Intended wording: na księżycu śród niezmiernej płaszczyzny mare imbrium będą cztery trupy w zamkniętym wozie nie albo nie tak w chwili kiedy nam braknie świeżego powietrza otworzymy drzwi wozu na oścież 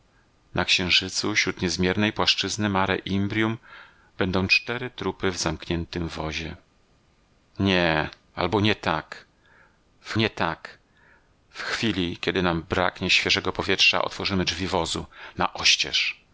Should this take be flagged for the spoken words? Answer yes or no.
yes